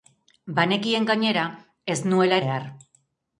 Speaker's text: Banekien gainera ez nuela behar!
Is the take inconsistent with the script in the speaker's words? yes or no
no